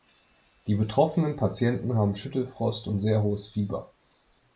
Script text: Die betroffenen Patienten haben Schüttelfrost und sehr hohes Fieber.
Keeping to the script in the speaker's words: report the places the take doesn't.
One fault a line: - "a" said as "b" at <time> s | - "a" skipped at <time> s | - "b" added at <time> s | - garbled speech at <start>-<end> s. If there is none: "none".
none